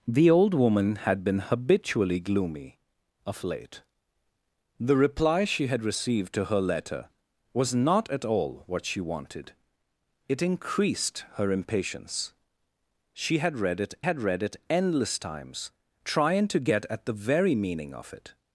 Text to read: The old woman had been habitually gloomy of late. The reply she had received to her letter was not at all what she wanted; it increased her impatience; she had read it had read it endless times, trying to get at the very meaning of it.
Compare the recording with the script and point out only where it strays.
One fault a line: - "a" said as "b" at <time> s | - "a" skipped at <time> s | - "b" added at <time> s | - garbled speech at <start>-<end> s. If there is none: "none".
none